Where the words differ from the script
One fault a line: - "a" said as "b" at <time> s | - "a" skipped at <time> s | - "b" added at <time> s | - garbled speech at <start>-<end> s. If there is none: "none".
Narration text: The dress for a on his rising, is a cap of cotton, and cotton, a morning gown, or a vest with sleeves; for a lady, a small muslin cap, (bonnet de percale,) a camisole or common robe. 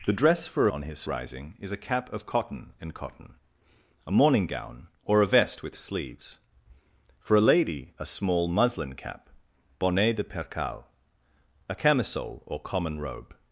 none